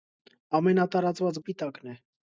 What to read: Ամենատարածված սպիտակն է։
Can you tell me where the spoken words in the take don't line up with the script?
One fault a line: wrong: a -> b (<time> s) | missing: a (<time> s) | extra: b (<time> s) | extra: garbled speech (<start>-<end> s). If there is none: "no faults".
no faults